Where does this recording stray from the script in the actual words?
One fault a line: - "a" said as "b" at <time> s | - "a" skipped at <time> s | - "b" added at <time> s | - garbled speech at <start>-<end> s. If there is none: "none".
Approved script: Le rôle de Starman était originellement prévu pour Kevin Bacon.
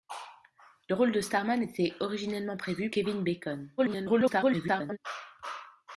- "pour" skipped at 2.9 s
- garbled speech at 3.8-5.0 s